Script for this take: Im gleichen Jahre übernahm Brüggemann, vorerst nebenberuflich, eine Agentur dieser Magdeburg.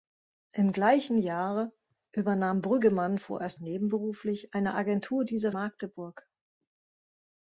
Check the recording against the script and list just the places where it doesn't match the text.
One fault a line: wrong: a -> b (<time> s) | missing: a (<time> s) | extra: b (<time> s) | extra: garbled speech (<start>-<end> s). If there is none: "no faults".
no faults